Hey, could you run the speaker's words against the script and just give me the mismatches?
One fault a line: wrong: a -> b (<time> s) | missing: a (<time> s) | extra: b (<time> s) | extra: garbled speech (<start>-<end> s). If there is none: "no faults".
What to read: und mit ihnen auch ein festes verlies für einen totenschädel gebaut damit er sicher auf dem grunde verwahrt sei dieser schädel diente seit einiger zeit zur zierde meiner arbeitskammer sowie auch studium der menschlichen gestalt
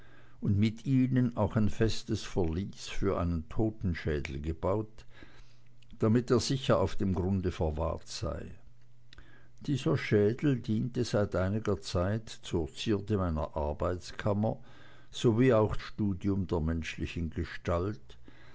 no faults